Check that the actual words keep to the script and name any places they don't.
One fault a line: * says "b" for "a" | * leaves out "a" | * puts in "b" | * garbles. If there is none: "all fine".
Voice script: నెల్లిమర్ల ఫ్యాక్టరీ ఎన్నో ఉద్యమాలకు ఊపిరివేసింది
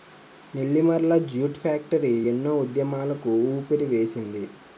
* puts in "జూట్"